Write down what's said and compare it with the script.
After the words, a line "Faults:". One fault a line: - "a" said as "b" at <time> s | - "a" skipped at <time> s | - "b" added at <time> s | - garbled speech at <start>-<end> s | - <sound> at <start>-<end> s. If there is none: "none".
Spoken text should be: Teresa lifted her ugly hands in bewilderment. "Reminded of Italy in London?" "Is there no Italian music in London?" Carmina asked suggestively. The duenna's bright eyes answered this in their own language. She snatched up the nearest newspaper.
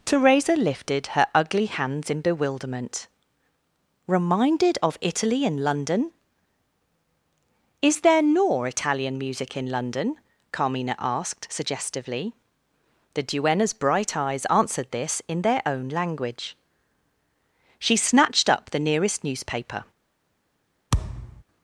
Teresa lifted her ugly hands in bewilderment. "Reminded of Italy in London?" "Is there nor Italian music in London?" Carmina asked suggestively. The duenna's bright eyes answered this in their own language. She snatched up the nearest newspaper.
Faults:
- "no" said as "nor" at 8.2 s
- thud at 20.9-21.4 s